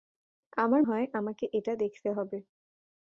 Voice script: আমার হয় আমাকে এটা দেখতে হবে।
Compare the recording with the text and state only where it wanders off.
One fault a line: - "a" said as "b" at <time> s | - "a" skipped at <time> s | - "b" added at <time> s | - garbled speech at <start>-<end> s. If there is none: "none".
none